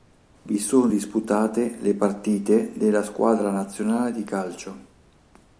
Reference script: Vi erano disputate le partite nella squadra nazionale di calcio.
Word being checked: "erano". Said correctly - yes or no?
no